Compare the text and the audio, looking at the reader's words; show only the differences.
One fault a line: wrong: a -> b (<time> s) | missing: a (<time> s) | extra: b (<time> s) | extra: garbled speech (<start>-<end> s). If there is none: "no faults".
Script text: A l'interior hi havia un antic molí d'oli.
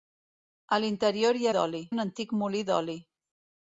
wrong: havia -> d'oli (1.6 s)